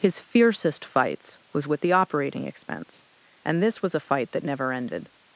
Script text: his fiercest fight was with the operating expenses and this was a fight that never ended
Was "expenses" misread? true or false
true